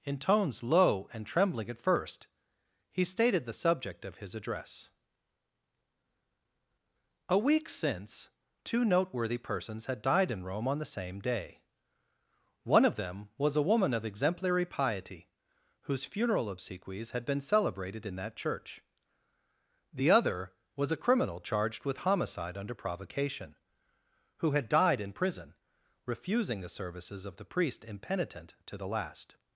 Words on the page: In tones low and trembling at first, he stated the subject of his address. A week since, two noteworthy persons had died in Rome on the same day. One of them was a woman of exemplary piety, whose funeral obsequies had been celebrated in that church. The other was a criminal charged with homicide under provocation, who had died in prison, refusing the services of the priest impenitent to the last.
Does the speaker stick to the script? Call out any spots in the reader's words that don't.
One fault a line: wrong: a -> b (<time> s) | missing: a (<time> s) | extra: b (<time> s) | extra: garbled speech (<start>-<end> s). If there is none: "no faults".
no faults